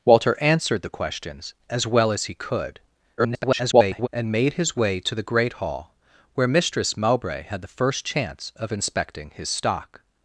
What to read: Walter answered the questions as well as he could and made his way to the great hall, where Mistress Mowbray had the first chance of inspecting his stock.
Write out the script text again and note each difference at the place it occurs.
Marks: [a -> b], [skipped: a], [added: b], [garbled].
Walter answered the questions as well as he could [garbled] and made his way to the great hall, where Mistress Mowbray had the first chance of inspecting his stock.